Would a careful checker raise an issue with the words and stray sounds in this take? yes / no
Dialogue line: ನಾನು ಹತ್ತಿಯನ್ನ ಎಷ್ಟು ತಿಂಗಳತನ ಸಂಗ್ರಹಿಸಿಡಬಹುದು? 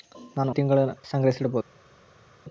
yes